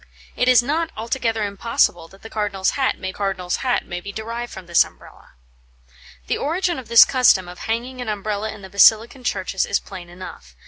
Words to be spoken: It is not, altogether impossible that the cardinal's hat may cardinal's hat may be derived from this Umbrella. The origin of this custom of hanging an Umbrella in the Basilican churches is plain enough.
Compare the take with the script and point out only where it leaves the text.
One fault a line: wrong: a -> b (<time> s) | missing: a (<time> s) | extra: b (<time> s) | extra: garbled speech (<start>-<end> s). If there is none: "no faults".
no faults